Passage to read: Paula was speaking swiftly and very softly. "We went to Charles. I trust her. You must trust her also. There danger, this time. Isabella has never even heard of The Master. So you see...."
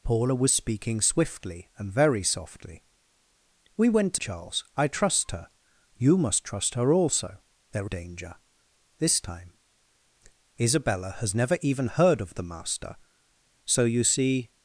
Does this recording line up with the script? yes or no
yes